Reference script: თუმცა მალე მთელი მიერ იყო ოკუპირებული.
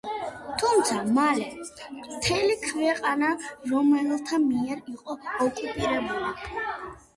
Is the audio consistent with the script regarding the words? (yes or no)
no